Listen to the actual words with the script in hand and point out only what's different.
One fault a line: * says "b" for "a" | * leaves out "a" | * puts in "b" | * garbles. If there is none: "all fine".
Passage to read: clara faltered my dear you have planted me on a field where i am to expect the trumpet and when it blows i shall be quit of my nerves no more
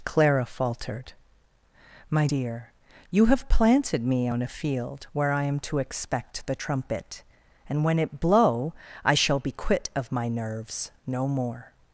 * says "blow" for "blows"